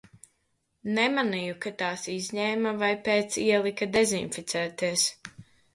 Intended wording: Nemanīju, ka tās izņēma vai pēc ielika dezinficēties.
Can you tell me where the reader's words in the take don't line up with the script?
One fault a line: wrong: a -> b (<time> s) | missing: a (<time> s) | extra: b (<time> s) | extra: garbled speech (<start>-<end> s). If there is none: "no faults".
no faults